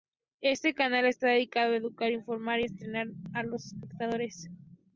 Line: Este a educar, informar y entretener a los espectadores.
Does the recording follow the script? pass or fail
fail